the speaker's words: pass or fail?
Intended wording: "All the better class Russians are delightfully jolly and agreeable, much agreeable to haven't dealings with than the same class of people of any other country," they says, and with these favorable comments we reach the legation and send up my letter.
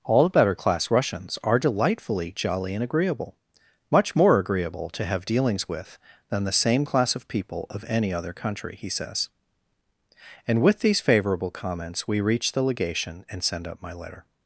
fail